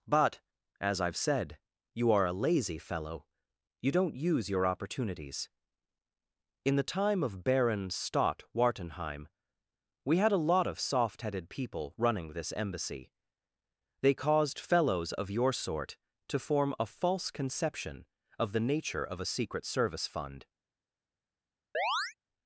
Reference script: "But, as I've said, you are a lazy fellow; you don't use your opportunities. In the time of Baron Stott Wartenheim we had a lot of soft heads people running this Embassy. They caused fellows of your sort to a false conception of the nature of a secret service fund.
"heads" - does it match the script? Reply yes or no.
no